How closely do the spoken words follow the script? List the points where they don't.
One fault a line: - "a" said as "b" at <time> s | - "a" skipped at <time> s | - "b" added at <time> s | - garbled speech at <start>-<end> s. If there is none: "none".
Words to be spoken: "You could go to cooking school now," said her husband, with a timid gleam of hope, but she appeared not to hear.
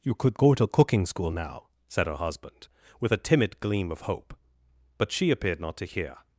none